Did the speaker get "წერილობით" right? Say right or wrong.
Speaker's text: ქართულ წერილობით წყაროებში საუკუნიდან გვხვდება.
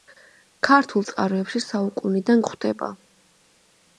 wrong